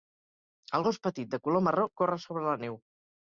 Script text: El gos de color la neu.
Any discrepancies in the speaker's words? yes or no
yes